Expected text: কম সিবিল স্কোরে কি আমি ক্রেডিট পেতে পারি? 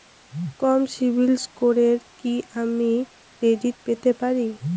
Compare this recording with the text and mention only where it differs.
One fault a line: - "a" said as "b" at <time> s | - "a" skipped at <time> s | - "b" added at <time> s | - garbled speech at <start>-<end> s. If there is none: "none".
none